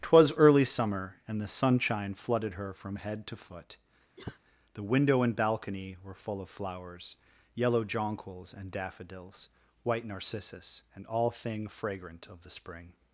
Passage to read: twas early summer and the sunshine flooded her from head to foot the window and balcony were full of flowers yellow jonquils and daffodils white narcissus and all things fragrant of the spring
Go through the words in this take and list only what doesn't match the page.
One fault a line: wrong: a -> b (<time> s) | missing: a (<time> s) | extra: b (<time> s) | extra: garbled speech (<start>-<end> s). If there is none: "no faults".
wrong: things -> thing (11.3 s)